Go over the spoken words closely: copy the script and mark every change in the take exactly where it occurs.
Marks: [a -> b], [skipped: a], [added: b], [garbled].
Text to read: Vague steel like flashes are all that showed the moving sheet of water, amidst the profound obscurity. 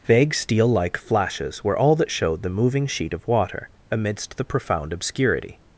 Vague steel like flashes [are -> were] all that showed the moving sheet of water, amidst the profound obscurity.